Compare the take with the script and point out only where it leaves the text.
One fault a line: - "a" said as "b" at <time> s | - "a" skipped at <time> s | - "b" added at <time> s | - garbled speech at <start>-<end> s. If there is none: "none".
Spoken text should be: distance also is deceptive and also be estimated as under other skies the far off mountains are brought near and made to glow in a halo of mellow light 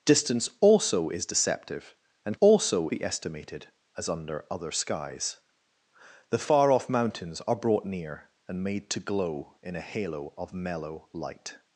none